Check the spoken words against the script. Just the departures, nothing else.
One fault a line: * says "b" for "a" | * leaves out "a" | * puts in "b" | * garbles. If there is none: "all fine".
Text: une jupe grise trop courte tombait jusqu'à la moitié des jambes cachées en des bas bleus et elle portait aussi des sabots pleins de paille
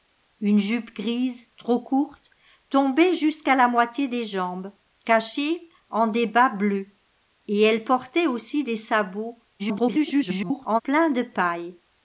* garbles